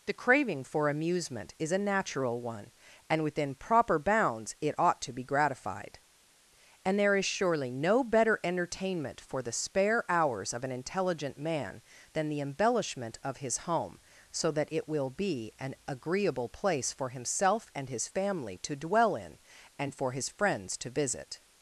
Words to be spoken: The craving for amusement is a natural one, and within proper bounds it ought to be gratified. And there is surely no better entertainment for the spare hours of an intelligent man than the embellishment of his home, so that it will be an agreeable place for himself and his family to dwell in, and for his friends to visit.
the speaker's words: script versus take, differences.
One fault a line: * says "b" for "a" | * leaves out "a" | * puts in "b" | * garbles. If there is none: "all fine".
all fine